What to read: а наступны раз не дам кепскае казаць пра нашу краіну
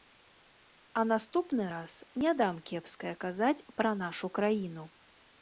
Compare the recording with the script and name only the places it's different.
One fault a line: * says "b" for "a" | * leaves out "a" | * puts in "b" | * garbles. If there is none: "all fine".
all fine